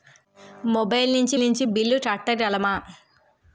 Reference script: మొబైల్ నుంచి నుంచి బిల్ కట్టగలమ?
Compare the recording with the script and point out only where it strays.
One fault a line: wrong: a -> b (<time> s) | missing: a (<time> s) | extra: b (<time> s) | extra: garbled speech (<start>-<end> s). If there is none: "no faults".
no faults